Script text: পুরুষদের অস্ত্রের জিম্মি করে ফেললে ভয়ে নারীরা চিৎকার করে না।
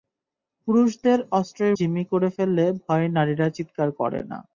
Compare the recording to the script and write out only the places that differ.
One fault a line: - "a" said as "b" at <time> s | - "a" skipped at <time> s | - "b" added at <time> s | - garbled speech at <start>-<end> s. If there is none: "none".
none